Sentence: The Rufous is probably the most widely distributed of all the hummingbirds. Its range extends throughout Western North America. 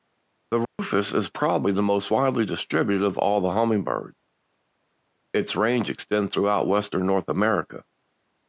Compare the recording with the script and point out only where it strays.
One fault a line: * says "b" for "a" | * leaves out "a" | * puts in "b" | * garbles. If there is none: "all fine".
all fine